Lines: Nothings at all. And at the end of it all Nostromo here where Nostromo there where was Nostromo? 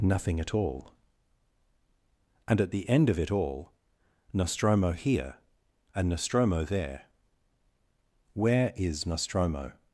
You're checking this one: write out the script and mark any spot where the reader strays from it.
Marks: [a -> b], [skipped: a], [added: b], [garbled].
[Nothings -> Nothing] at all. And at the end of it all Nostromo here [where -> and] Nostromo there where [was -> is] Nostromo?